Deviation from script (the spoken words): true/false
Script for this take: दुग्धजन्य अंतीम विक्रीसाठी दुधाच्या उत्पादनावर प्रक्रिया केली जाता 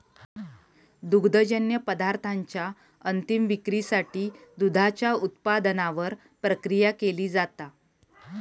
true